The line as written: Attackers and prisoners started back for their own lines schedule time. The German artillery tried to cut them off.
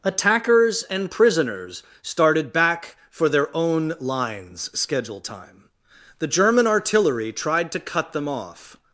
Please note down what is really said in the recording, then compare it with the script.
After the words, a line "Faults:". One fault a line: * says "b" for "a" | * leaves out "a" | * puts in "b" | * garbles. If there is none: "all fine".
Attackers and prisoners started back for their own lines schedule time. The German artillery tried to cut them off.
Faults:
all fine